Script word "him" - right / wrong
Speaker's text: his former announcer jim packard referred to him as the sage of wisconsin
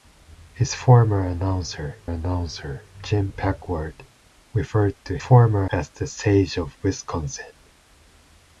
wrong